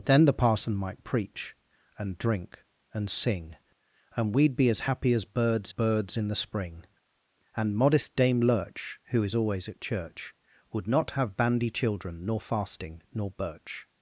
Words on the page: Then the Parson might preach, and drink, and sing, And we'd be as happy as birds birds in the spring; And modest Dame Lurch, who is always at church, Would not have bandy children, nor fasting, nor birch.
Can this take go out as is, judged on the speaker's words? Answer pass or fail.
pass